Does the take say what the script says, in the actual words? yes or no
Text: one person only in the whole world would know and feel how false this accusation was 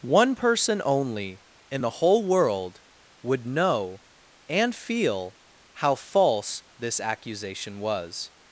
yes